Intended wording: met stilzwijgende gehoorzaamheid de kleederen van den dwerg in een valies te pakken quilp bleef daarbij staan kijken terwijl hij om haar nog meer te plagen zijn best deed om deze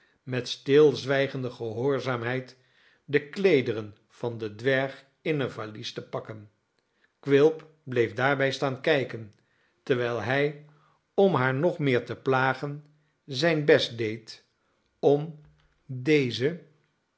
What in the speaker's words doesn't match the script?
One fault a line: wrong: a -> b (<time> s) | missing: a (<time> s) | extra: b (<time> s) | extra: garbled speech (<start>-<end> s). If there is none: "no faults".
no faults